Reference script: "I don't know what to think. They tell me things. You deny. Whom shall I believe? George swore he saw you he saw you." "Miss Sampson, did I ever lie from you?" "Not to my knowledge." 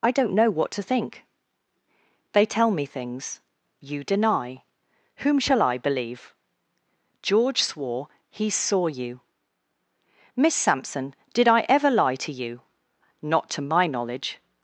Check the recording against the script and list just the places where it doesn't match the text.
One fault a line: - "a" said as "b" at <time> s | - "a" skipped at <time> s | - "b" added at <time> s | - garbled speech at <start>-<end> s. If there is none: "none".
- "he saw you" skipped at 9.2 s
- "from" said as "to" at 12.2 s